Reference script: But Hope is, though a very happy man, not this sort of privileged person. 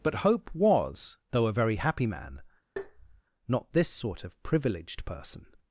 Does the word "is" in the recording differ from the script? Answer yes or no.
yes